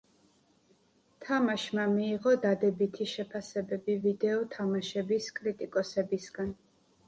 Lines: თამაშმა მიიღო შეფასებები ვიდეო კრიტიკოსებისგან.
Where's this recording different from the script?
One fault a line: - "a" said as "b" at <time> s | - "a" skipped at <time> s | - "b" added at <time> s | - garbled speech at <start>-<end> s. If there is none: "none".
- "დადებითი" added at 2.5 s
- "თამაშების" added at 4.6 s